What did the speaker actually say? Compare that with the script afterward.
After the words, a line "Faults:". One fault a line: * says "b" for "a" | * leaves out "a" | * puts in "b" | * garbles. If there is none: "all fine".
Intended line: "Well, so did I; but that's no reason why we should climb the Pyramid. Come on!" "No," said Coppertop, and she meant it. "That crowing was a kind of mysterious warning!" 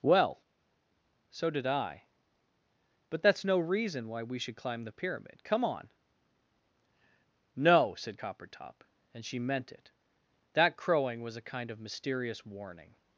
"Well, so did I; but that's no reason why we should climb the Pyramid. Come on!" "No," said Coppertop, and she meant it. "That crowing was a kind of mysterious warning!"
Faults:
all fine